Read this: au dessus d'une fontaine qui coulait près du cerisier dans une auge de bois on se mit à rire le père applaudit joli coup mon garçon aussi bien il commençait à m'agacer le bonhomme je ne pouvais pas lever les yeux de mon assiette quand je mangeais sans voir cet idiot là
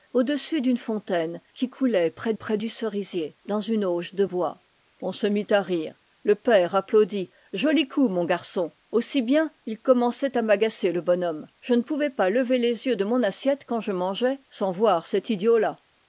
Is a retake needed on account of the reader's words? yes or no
yes